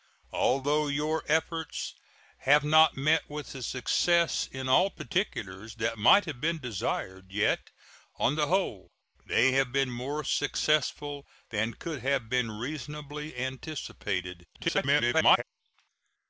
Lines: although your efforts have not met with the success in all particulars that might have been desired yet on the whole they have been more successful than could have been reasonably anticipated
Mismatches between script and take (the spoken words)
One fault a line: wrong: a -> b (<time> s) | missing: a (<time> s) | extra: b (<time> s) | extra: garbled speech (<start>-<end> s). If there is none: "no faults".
extra: garbled speech (14.5-15.4 s)